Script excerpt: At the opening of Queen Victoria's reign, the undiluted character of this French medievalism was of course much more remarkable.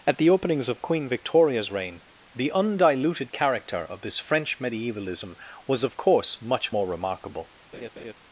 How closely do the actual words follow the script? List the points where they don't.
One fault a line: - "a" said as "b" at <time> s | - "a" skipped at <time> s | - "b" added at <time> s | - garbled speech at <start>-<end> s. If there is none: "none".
- "opening" said as "openings" at 0.3 s